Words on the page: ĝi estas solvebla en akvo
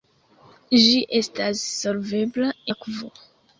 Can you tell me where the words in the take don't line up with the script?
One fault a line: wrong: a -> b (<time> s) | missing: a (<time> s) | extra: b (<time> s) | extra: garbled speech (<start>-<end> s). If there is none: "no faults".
missing: en (2.5 s)